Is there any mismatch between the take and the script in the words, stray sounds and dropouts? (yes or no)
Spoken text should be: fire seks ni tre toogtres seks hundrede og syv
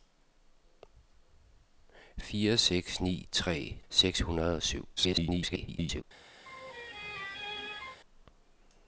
yes